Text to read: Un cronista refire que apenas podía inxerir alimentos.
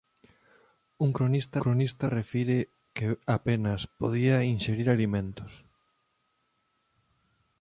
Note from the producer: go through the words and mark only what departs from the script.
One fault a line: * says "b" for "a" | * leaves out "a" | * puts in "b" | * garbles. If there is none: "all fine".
* puts in "cronista"